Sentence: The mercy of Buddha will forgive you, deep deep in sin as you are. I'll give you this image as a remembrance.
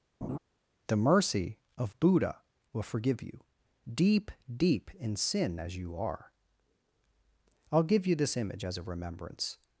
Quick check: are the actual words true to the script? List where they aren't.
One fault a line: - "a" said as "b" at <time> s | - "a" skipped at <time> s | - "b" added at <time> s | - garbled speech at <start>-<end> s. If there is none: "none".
none